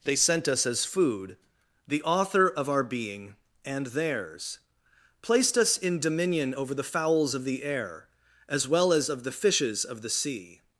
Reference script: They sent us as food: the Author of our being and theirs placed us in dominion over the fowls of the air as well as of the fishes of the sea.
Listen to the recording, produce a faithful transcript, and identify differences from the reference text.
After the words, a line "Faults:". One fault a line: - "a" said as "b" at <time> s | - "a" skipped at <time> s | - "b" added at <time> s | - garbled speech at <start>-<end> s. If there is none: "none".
They sent us as food: the Author of our being and theirs placed us in dominion over the fowls of the air as well as of the fishes of the sea.
Faults:
none